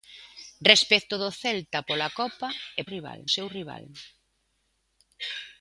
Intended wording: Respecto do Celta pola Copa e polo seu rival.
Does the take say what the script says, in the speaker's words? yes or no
no